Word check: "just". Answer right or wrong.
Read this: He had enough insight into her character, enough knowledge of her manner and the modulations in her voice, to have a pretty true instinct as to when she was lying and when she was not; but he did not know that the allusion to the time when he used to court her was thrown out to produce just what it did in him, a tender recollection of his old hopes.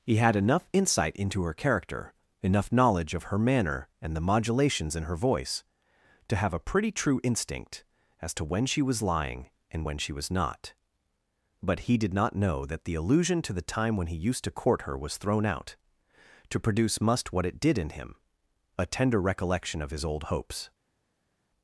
wrong